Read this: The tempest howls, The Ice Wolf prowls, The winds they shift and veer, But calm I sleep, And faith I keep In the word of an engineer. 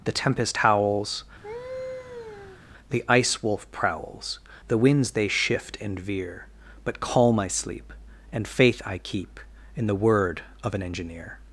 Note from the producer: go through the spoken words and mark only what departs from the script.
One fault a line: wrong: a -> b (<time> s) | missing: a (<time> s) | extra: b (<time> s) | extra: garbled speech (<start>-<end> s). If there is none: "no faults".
no faults